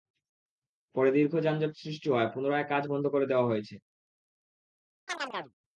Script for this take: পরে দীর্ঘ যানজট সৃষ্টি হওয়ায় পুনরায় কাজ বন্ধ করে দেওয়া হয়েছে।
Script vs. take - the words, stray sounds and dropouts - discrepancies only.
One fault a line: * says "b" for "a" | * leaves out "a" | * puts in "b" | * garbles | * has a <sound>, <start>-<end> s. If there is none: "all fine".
* has a chirp, 5.1-5.5 s